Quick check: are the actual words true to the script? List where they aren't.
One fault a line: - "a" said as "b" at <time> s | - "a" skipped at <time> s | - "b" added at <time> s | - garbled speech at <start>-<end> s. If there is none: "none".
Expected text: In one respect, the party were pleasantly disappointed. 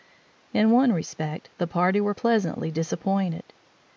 none